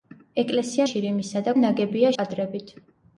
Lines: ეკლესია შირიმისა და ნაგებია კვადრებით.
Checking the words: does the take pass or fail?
pass